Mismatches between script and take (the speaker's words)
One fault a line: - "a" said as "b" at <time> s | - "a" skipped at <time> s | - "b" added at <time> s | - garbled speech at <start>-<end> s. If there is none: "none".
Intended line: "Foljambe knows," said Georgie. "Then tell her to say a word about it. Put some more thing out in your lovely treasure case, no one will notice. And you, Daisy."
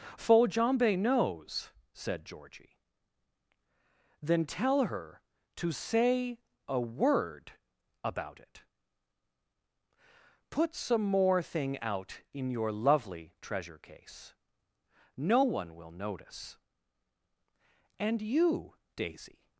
none